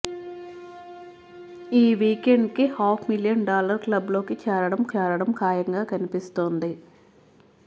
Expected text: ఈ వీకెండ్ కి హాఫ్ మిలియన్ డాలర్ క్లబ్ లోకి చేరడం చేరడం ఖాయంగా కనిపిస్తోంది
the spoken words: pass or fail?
pass